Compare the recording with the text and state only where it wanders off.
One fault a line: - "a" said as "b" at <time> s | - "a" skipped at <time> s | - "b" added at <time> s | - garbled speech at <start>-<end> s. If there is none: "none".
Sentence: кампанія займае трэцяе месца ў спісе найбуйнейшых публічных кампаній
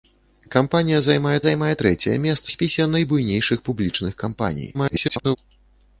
- "займае" added at 1.4 s
- "ў" skipped at 2.5 s
- garbled speech at 4.7-5.4 s